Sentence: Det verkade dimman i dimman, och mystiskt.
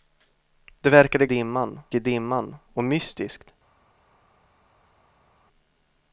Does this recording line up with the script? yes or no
yes